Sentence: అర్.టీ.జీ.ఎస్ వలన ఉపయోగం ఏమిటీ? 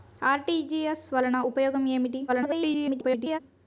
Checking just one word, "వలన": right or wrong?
right